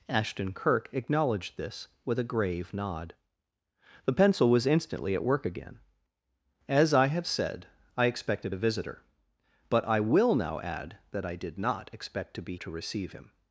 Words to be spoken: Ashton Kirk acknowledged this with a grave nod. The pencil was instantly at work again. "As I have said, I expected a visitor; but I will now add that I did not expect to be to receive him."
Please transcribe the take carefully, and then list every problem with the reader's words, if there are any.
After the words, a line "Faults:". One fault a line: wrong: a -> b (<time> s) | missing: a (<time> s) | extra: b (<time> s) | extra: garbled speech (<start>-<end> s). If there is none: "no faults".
Ashton Kirk acknowledged this with a grave nod. The pencil was instantly at work again. "As I have said, I expected a visitor; but I will now add that I did not expect to be to receive him."
Faults:
no faults